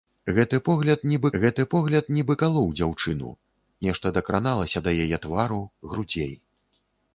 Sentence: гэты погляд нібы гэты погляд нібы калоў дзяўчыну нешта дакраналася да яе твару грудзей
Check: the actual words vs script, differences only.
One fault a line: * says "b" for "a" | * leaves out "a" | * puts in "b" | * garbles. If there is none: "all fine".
all fine